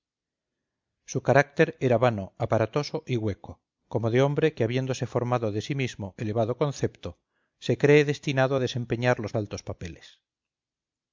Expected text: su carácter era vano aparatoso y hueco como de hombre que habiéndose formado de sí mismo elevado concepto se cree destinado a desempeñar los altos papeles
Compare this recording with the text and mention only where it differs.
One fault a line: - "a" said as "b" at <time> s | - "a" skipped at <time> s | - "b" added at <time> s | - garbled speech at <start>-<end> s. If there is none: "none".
none